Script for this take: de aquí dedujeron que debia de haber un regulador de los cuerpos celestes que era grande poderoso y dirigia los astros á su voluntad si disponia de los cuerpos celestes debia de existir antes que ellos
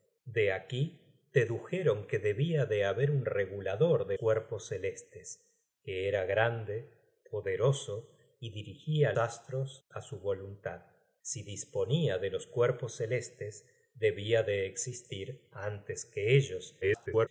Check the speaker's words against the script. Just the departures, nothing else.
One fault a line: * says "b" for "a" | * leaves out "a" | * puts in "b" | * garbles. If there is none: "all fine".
* leaves out "los"
* leaves out "los"
* garbles